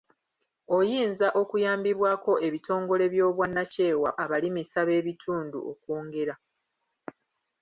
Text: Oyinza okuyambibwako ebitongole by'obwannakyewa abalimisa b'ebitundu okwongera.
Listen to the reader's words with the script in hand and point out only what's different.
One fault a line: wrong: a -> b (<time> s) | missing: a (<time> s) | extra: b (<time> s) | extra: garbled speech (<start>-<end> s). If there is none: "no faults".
no faults